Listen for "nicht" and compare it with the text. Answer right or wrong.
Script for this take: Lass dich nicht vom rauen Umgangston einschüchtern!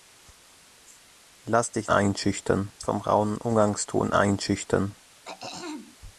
wrong